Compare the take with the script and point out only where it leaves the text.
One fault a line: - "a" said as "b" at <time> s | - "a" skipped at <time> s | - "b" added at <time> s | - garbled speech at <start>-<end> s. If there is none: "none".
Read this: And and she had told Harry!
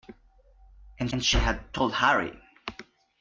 none